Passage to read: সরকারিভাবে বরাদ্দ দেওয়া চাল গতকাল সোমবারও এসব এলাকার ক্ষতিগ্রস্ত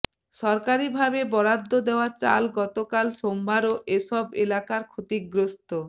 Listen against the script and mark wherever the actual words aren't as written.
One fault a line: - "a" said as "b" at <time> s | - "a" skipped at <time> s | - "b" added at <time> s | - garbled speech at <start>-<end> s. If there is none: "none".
none